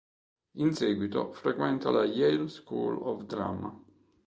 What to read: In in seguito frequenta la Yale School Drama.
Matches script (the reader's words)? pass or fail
fail